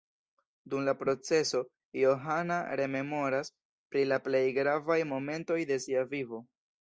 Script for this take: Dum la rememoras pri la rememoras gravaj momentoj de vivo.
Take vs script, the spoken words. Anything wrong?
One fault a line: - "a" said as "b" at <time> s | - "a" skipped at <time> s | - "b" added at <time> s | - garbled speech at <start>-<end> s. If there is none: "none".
- "proceso Johana" added at 1.0 s
- "rememoras" said as "plej" at 4.3 s
- "sia" added at 5.9 s